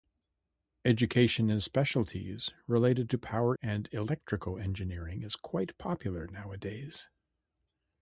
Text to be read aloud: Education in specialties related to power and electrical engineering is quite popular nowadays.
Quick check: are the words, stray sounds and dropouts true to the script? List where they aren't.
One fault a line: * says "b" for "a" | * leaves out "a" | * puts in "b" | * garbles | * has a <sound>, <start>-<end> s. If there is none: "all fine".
all fine